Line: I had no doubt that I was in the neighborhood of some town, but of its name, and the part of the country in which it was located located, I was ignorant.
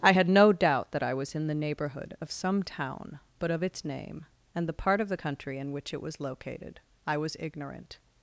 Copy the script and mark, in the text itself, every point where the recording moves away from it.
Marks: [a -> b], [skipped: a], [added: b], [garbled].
I had no doubt that I was in the neighborhood of some town, but of its name, and the part of the country in which it was located [skipped: located,] I was ignorant.